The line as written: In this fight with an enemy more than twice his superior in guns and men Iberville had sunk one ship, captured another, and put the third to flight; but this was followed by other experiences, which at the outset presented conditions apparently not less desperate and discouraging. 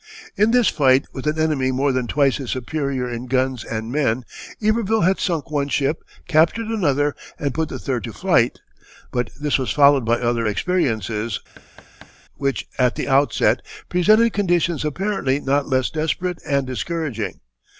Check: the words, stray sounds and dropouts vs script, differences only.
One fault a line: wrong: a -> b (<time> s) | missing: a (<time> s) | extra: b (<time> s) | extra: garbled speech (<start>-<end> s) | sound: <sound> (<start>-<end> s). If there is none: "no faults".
sound: thud (11.6-12.2 s)